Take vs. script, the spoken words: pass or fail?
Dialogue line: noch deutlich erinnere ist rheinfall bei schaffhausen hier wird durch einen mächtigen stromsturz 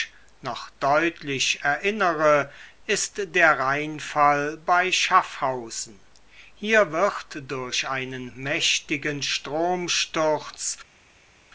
fail